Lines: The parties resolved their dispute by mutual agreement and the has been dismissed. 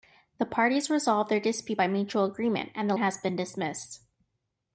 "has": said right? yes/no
yes